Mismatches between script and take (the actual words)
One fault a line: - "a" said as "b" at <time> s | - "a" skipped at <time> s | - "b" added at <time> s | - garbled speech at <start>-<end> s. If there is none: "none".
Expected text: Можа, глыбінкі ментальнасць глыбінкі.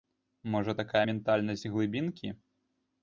- "глыбінкі" said as "такая" at 0.8 s